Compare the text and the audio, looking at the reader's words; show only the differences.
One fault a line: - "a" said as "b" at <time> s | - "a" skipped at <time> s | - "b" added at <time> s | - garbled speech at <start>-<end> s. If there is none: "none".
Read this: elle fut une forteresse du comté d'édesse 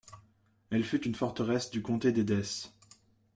none